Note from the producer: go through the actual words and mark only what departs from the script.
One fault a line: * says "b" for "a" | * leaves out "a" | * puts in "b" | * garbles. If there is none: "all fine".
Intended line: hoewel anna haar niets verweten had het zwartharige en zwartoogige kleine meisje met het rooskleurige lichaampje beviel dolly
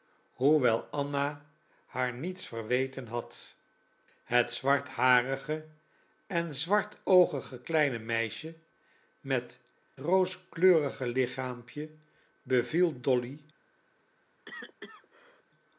* leaves out "het"